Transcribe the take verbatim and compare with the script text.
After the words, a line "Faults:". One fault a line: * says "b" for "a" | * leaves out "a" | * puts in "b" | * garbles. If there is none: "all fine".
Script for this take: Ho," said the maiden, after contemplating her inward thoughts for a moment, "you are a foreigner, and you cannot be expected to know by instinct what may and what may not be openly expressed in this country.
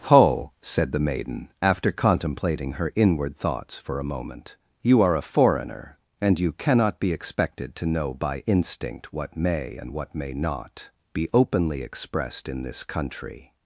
Ho," said the maiden, after contemplating her inward thoughts for a moment, "you are a foreigner, and you cannot be expected to know by instinct what may and what may not be openly expressed in this country.
Faults:
all fine